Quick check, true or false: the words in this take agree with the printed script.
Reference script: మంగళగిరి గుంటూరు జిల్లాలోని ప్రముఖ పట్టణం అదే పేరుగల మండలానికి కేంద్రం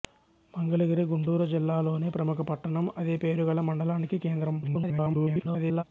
false